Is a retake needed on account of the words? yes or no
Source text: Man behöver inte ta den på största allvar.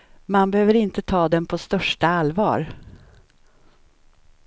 no